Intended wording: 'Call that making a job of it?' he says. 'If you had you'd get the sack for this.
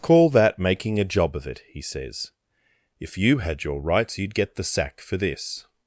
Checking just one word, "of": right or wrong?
right